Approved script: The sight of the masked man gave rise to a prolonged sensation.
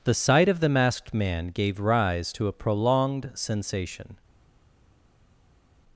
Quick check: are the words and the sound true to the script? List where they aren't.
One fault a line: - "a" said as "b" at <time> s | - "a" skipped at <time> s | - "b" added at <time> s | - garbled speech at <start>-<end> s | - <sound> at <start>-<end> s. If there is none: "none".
none